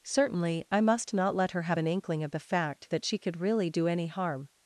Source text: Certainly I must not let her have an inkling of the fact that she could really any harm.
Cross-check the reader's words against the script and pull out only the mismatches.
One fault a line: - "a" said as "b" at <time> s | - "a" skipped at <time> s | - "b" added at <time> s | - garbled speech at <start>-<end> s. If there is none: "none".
- "do" added at 3.7 s